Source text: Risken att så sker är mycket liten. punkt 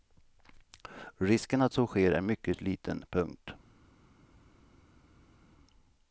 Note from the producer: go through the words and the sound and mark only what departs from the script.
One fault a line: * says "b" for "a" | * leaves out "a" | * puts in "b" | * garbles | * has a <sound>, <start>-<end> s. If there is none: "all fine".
all fine